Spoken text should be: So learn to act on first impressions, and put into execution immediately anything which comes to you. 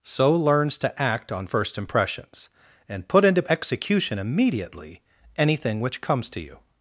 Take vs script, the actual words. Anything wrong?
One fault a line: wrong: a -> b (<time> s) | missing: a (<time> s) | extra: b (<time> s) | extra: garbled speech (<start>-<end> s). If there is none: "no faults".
wrong: learn -> learns (0.3 s)